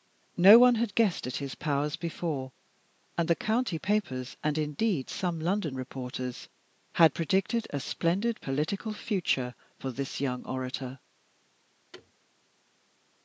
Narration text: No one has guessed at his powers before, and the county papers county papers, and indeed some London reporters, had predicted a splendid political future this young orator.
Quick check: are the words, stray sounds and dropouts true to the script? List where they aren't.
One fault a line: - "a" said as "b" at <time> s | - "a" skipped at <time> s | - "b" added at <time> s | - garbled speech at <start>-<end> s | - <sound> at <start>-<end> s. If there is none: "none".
- "has" said as "had" at 0.7 s
- "county papers" skipped at 4.4 s
- "for" added at 9.8 s
- thud at 11.9-12.1 s